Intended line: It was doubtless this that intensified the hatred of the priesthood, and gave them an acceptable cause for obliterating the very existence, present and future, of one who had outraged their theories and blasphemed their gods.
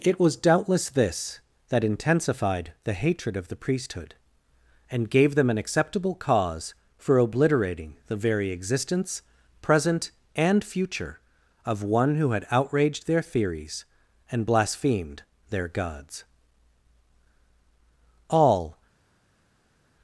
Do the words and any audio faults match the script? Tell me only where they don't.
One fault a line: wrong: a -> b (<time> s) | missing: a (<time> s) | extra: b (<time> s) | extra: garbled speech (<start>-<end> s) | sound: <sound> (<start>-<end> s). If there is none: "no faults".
extra: All (18.3 s)